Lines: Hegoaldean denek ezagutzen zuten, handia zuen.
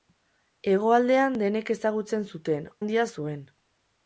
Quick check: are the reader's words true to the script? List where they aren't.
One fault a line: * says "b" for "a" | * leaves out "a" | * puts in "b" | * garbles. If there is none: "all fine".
all fine